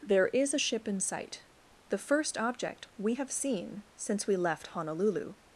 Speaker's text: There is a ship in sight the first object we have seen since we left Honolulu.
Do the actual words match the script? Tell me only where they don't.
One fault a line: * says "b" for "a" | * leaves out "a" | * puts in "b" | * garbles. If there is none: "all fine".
all fine